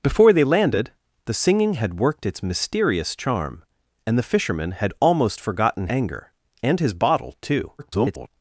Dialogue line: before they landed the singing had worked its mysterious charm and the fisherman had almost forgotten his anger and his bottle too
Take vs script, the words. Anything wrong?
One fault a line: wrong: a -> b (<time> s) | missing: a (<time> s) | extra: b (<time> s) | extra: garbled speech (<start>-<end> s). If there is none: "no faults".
missing: his (5.9 s)
extra: garbled speech (7.8-8.3 s)